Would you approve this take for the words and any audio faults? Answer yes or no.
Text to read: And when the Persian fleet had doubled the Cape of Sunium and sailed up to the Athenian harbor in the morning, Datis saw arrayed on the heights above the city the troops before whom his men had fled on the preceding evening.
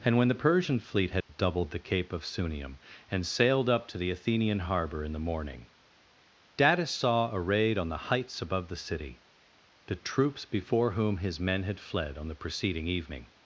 no